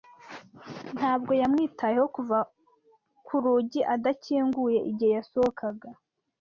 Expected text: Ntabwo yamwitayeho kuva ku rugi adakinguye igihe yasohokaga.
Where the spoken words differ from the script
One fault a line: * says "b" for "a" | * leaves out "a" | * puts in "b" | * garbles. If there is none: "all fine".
all fine